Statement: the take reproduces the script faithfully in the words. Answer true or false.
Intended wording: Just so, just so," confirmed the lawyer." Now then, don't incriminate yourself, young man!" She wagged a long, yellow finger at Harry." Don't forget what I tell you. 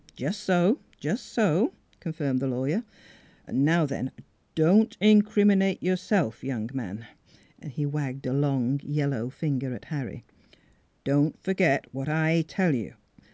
false